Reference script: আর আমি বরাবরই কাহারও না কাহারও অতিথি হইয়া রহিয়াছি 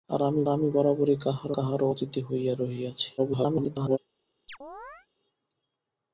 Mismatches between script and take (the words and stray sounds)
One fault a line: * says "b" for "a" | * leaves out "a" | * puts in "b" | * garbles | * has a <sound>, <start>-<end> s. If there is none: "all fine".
* puts in "আমি"
* leaves out "না"
* garbles
* has a chirp, 4.5-5.1 s